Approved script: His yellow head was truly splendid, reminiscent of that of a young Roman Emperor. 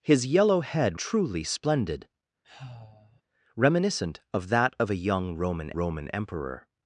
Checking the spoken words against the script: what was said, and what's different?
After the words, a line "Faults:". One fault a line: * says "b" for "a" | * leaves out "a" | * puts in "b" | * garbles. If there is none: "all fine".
His yellow head truly splendid, reminiscent of that of a young Roman Roman Emperor.
Faults:
* leaves out "was"
* puts in "Roman"